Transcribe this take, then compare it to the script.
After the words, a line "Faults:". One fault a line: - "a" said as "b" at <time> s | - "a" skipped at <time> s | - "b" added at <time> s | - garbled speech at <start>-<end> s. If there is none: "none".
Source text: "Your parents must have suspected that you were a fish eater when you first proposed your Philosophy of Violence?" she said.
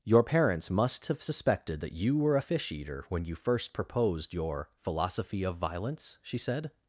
"Your parents must have suspected that you were a fish eater when you first proposed your Philosophy of Violence?" she said.
Faults:
none